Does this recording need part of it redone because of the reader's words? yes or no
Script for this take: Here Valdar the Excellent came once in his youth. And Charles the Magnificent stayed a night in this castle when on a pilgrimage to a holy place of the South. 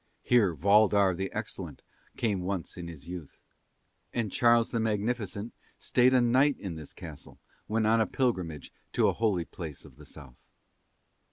no